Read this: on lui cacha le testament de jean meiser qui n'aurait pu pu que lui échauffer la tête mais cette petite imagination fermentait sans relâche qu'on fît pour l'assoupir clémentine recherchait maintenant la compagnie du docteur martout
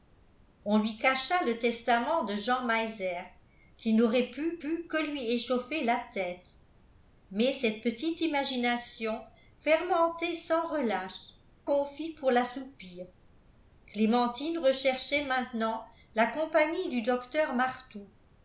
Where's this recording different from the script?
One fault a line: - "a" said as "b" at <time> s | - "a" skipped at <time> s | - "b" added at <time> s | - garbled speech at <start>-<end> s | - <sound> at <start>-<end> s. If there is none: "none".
none